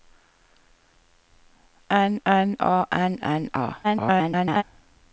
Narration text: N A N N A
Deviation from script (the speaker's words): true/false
true